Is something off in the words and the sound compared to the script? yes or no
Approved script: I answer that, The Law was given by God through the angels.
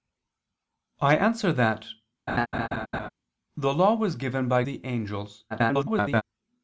yes